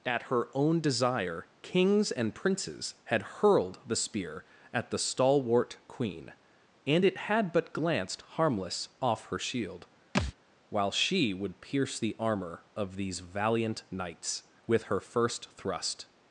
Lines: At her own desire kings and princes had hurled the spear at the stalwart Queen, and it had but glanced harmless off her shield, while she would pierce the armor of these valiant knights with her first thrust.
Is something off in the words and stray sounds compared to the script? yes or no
yes